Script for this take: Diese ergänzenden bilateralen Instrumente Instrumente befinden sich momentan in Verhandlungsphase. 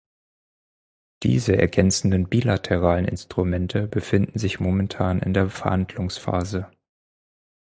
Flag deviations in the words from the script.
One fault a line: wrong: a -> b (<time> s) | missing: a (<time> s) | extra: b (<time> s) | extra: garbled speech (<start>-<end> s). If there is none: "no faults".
missing: Instrumente (3.9 s)
extra: der (5.3 s)